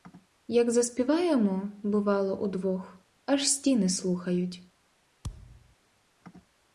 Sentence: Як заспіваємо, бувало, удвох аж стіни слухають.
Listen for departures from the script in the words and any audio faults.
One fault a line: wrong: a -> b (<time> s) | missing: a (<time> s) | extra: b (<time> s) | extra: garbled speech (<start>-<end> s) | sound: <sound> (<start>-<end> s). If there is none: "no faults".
sound: thud (5.2-5.8 s)